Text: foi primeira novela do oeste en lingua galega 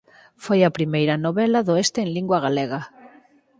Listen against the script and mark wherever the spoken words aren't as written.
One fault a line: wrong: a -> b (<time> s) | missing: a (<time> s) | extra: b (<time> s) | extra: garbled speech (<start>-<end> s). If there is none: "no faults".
extra: a (0.6 s)